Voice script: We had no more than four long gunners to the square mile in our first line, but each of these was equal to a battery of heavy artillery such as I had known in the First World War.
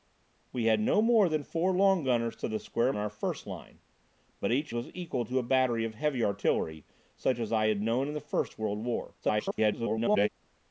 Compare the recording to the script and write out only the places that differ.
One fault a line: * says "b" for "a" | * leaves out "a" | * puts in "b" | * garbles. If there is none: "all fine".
* leaves out "mile"
* leaves out "of these"
* garbles